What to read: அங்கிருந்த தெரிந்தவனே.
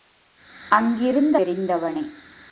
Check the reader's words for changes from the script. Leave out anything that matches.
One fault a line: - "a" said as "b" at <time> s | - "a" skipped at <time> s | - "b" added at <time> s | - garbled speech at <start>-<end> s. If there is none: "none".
none